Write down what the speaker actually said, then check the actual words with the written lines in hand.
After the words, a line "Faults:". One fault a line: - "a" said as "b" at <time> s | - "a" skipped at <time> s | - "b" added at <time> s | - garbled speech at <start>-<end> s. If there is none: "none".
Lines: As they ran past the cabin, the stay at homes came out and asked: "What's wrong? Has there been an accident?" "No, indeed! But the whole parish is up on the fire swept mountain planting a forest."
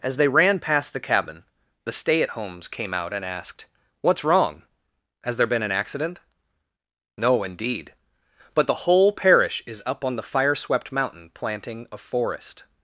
As they ran past the cabin, the stay at homes came out and asked: "What's wrong? Has there been an accident?" "No, indeed! But the whole parish is up on the fire swept mountain planting a forest."
Faults:
none